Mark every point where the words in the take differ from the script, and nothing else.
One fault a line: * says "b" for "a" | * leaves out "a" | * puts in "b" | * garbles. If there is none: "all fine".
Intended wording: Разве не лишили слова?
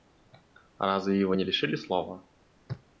* puts in "его"